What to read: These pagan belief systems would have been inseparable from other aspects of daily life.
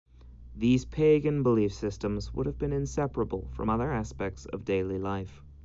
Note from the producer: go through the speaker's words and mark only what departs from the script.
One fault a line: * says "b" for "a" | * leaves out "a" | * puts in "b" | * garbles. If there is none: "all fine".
all fine